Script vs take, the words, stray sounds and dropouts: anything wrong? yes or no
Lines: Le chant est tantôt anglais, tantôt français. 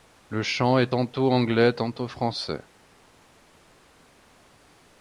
no